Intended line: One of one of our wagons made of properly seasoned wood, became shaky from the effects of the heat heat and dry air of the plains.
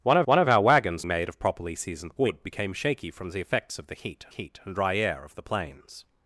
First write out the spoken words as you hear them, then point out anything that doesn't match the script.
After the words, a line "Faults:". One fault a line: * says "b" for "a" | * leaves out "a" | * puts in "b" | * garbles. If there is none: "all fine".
One of one of our wagons made of properly seasoned wood, became shaky from the effects of the heat heat and dry air of the plains.
Faults:
all fine